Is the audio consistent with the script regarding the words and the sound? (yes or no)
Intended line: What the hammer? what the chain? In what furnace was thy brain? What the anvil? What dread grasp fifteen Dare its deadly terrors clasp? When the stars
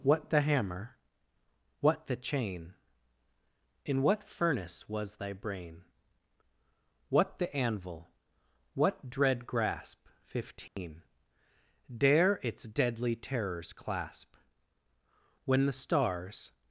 no